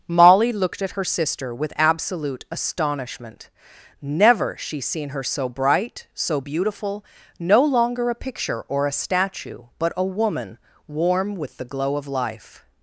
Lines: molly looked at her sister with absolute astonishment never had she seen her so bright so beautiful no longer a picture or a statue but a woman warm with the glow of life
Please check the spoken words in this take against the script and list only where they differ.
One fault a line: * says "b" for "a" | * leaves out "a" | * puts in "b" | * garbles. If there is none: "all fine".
* leaves out "had"